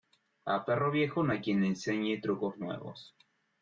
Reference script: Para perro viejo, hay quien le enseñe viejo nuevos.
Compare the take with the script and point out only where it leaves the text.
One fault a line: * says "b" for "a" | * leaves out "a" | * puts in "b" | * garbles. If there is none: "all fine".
* says "A" for "Para"
* puts in "no"
* says "trucos" for "viejo"